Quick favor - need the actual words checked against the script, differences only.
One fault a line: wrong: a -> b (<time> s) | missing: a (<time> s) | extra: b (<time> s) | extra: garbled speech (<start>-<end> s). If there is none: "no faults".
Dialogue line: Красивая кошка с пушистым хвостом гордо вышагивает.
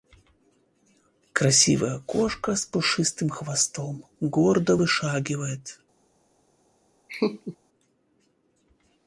no faults